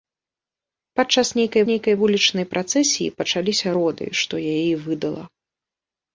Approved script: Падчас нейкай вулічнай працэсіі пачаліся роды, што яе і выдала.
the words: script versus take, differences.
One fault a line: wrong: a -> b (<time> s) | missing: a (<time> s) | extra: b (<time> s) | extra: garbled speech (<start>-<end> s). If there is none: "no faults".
extra: нейкай (1.7 s)